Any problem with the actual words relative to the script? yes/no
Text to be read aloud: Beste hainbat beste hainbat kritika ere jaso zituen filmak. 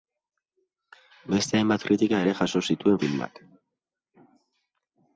yes